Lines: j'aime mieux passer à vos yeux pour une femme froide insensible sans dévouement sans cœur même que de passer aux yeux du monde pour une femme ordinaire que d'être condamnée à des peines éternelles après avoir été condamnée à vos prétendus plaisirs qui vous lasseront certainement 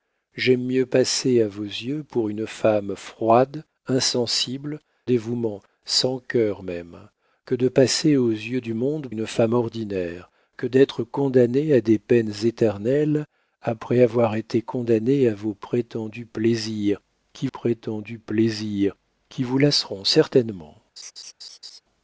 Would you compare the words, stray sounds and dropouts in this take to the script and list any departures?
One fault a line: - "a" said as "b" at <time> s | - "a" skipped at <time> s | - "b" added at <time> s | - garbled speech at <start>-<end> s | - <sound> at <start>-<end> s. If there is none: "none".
- "sans" skipped at 4.8 s
- "pour" skipped at 9.1 s
- "prétendus plaisirs qui" added at 17.5 s
- laugh at 21.0-21.8 s